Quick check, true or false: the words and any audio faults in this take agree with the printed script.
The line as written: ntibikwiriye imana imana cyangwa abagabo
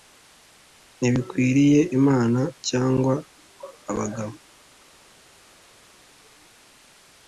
false